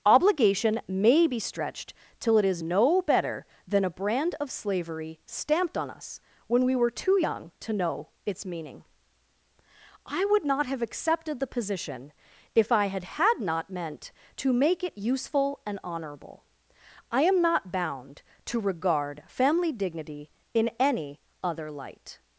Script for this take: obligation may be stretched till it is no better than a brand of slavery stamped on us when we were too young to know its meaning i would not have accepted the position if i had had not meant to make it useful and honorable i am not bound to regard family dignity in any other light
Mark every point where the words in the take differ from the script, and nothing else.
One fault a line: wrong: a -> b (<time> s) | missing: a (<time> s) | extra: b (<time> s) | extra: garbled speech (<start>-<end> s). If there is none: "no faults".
no faults